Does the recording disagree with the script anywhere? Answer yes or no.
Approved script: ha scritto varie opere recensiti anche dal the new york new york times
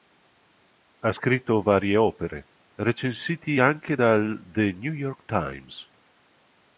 yes